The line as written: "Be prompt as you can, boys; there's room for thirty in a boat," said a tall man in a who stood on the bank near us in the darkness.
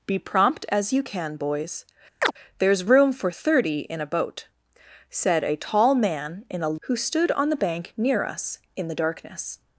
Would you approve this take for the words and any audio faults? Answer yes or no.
no